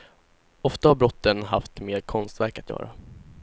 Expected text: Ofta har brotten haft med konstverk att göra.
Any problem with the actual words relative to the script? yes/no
no